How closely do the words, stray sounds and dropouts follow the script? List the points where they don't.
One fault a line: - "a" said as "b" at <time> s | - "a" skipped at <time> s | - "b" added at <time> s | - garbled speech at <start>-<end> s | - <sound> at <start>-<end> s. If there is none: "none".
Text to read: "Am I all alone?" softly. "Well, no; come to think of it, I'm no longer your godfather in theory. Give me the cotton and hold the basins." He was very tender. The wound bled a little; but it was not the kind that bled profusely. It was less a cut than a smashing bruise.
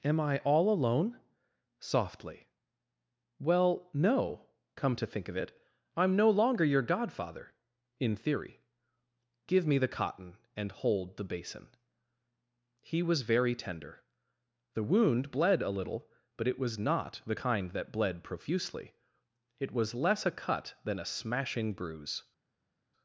- "basins" said as "basin" at 11.3 s